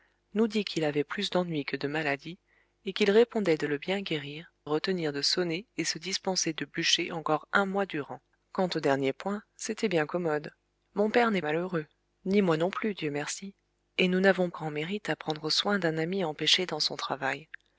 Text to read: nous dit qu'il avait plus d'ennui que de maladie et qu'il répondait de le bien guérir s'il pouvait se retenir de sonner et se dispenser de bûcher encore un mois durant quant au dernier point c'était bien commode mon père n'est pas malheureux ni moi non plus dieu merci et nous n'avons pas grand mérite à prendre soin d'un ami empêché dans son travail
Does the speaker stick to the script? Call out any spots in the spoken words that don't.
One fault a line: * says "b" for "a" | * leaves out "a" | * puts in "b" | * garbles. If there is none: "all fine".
* leaves out "s'il pouvait se"
* leaves out "pas"
* leaves out "pas"